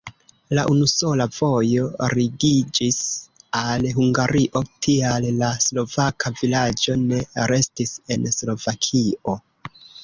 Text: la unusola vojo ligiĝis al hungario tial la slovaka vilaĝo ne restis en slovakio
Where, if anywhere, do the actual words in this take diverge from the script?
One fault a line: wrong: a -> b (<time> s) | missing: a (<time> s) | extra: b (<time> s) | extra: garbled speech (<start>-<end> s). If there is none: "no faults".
no faults